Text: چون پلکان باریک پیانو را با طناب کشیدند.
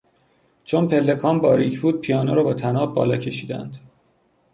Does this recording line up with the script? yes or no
no